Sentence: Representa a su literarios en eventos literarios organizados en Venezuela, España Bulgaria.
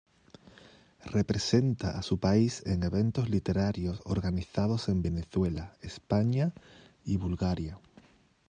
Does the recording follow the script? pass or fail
fail